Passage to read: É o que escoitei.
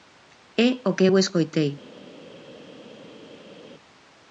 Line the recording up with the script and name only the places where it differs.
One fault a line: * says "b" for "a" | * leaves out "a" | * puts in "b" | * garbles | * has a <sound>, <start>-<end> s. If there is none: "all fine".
* puts in "eu"